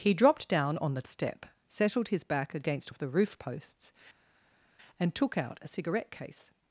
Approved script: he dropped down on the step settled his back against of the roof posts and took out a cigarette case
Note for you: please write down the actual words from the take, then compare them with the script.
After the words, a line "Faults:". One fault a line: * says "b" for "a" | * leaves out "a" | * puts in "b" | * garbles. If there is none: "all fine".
he dropped down on the step settled his back against of the roof posts and took out a cigarette case
Faults:
all fine